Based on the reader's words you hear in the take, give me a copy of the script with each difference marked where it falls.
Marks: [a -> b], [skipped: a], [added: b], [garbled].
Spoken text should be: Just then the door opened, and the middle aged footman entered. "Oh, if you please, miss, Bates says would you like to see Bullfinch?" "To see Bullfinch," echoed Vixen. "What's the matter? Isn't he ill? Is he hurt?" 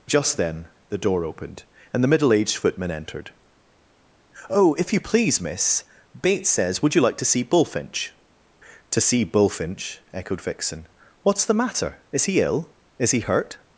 Just then the door opened, and the middle aged footman entered. "Oh, if you please, miss, Bates says would you like to see Bullfinch?" "To see Bullfinch," echoed Vixen. "What's the matter? [Isn't -> Is] he ill? Is he hurt?"